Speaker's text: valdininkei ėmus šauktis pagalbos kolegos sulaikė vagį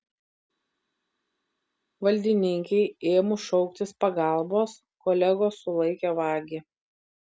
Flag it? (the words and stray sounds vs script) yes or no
no